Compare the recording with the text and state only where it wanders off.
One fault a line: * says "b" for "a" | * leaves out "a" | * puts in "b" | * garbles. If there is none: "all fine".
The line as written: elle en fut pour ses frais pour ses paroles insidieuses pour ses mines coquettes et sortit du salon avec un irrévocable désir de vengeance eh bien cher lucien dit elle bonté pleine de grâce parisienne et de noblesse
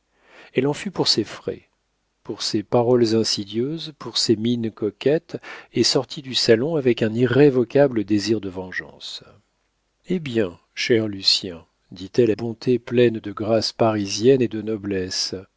all fine